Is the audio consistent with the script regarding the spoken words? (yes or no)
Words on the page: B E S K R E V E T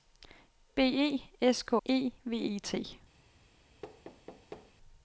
no